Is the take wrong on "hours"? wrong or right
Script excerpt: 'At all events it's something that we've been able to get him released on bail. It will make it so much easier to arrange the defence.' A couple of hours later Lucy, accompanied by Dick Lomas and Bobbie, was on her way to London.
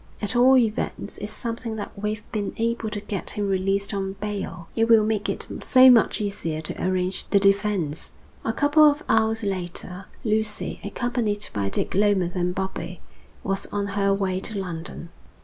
right